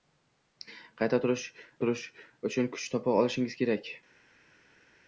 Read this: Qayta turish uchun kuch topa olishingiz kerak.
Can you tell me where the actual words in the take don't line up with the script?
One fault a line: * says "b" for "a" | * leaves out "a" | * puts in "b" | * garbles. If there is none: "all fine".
* puts in "turish"